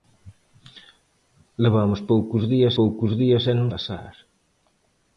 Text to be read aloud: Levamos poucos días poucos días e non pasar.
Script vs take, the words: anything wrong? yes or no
no